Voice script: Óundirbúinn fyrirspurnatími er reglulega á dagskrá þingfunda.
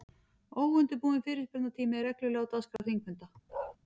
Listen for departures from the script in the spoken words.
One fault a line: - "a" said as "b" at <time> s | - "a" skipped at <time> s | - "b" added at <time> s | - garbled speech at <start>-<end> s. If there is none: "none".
none